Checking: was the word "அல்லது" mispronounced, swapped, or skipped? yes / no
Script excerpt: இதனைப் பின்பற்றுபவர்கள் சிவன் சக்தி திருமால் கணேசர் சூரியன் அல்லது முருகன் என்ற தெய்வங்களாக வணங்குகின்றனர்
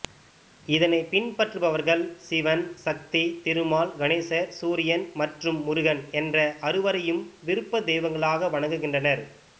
yes